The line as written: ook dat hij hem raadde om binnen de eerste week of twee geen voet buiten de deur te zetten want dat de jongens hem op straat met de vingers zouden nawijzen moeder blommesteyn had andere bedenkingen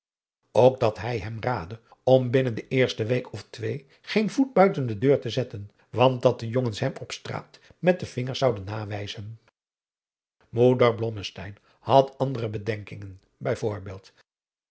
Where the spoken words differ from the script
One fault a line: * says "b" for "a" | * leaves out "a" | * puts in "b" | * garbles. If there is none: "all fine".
all fine